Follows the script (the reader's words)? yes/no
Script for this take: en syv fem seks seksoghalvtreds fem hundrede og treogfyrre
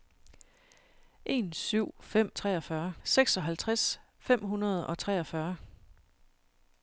no